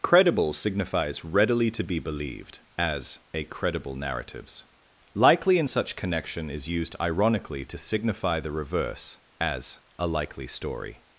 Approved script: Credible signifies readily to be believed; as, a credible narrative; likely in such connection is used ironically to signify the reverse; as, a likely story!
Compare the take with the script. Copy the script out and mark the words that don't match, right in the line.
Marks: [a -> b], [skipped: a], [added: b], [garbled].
Credible signifies readily to be believed; as, a credible [narrative; -> narratives] likely in such connection is used ironically to signify the reverse; as, a likely story!